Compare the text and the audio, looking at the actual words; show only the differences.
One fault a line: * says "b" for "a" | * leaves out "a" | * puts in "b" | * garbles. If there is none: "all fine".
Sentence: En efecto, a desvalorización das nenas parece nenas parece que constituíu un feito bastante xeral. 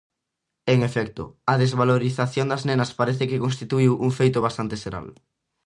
* leaves out "nenas parece"